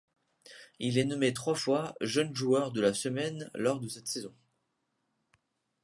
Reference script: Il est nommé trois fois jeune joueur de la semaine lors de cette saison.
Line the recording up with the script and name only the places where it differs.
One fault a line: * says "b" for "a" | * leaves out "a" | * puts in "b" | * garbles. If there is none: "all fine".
all fine